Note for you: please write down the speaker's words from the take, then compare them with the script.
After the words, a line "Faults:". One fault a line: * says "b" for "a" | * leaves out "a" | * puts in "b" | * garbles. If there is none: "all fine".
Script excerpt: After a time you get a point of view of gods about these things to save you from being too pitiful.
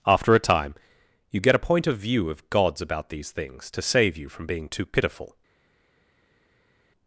After a time you get a point of view of gods about these things to save you from being too pitiful.
Faults:
all fine